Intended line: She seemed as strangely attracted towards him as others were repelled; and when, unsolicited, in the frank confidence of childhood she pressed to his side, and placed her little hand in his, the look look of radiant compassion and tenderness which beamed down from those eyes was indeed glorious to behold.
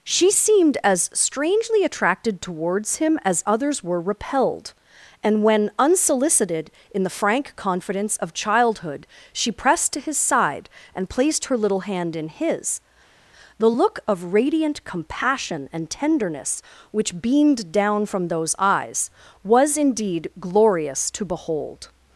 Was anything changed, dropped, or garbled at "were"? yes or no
no